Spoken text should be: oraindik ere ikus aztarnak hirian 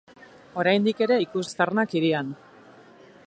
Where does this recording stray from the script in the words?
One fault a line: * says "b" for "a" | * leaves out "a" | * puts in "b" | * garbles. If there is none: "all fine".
all fine